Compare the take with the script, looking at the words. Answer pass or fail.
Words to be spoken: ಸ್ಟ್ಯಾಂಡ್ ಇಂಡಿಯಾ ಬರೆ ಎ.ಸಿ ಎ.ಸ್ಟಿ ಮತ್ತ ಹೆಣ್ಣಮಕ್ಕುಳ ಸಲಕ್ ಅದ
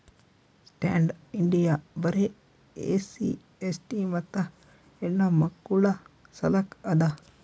pass